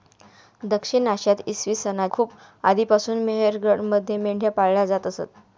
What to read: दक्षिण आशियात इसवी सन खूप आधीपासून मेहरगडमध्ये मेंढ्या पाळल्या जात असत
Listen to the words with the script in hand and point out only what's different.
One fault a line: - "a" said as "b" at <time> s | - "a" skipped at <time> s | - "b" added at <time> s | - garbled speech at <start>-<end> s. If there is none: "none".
none